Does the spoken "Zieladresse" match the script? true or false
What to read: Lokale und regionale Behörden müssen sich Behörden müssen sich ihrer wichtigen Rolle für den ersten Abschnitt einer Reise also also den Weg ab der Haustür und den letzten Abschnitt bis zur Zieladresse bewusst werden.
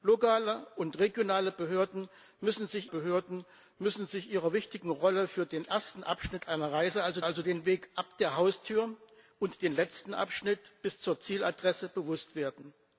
true